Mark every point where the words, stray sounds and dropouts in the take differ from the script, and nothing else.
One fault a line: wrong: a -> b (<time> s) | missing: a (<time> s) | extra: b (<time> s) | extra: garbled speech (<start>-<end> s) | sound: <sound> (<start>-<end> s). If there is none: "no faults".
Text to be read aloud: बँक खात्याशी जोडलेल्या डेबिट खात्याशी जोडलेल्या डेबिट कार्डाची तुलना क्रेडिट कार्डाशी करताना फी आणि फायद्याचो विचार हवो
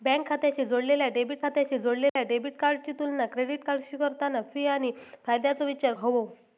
sound: dropout (2.1-2.2 s)